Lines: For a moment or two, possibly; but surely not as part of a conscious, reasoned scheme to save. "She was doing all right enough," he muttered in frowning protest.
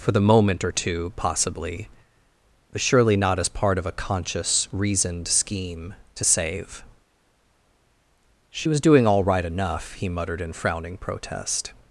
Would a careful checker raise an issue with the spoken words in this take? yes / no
yes